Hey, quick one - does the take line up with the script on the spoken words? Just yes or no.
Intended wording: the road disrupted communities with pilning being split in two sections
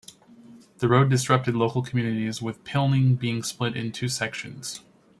no